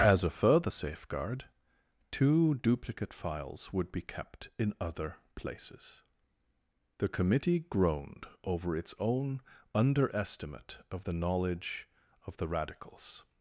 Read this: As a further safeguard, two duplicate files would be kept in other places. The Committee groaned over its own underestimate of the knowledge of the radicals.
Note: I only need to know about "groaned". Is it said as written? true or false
true